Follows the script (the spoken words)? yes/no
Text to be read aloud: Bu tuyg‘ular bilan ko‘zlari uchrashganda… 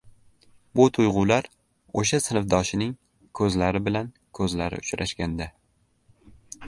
no